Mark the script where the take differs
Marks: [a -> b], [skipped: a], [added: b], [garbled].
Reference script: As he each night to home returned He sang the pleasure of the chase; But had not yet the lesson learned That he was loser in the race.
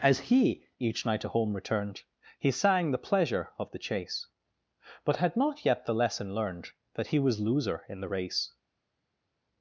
As he each night to home returned He sang the pleasure of the chase; But had not yet the lesson learned That he was loser in the race.